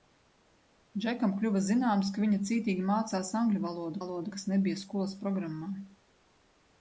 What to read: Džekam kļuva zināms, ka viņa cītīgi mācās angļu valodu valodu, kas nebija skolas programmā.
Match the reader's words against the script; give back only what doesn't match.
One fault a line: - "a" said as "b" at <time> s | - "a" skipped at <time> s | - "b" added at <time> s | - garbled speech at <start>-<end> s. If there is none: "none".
none